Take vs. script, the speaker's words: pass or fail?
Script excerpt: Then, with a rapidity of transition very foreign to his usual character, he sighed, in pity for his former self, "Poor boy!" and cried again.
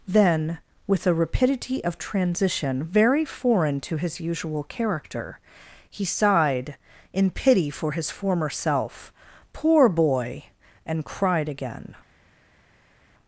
pass